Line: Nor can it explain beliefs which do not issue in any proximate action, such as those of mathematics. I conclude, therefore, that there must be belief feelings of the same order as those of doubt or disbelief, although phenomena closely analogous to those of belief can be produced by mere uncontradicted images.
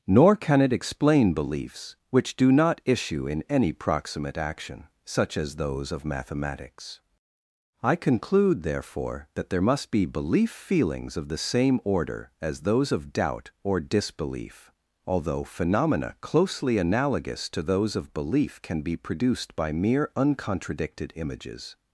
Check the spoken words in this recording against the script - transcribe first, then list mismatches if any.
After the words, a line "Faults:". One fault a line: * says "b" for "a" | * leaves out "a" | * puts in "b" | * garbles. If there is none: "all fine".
Nor can it explain beliefs which do not issue in any proximate action, such as those of mathematics. I conclude, therefore, that there must be belief feelings of the same order as those of doubt or disbelief, although phenomena closely analogous to those of belief can be produced by mere uncontradicted images.
Faults:
all fine